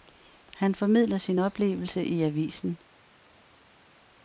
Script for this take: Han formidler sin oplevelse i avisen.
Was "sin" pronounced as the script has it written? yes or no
yes